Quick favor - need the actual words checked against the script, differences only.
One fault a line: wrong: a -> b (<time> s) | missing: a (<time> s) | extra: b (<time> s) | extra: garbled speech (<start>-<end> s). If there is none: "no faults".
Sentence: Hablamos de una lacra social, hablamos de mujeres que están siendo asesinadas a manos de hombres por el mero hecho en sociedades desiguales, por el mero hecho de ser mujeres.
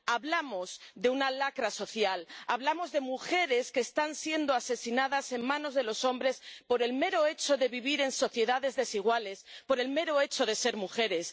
extra: los (5.8 s)
extra: de vivir (7.6 s)